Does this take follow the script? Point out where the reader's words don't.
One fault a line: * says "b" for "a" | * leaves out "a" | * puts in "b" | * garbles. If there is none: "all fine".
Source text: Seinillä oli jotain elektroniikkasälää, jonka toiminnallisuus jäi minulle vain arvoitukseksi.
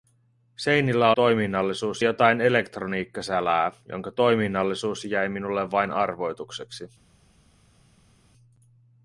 * says "toiminnallisuus" for "oli"